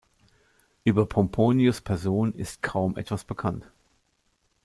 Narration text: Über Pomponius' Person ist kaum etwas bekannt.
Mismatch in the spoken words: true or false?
false